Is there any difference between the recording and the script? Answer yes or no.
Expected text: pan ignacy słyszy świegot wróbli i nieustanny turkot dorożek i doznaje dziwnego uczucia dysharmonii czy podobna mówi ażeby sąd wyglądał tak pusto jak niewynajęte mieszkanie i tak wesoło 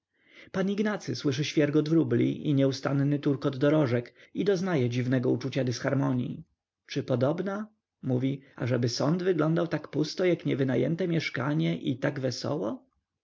no